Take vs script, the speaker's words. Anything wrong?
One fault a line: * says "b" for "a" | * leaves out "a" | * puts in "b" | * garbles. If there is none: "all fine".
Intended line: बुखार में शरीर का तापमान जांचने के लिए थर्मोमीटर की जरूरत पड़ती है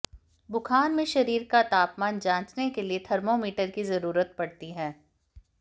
all fine